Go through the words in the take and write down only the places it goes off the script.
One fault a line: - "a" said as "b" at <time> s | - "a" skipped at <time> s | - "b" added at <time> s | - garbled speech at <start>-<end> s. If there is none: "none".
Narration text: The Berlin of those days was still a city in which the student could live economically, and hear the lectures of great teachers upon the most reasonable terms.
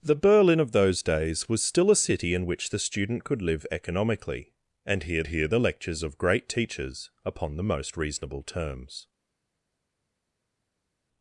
- "hear" added at 5.3 s